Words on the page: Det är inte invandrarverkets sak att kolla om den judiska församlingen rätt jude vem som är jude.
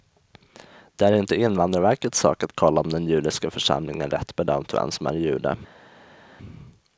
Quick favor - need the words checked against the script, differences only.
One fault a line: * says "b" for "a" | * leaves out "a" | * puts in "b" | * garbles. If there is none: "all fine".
* says "bedömt" for "jude"